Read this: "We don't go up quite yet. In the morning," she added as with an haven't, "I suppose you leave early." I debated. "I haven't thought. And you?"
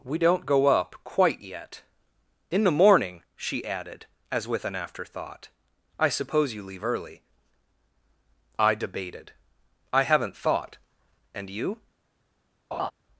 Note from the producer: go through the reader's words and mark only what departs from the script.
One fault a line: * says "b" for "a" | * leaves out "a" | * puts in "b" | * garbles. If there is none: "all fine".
* says "afterthought" for "haven't"